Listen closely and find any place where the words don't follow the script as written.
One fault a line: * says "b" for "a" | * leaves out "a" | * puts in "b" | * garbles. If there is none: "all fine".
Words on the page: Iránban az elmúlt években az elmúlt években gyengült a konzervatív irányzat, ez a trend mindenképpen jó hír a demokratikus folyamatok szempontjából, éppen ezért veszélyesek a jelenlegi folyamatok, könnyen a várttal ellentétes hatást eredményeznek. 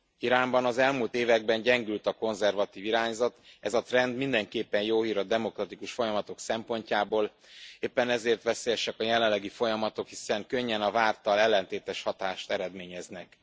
* leaves out "az elmúlt években"
* puts in "hiszen"